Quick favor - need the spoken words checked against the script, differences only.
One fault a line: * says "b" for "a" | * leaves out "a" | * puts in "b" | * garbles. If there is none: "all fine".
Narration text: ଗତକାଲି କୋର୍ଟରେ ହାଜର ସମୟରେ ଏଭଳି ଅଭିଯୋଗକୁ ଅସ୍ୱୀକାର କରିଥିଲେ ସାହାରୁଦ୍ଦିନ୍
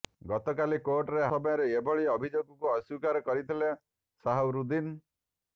* leaves out "ହାଜର"